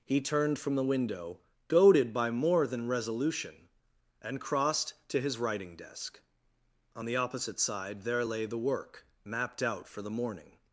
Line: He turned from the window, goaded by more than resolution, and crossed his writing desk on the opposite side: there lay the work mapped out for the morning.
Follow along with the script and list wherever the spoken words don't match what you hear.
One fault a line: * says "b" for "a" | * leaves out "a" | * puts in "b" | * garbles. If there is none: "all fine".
* puts in "to"